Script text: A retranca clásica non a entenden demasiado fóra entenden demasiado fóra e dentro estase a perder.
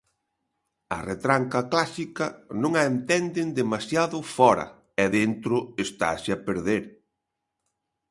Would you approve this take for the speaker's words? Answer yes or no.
no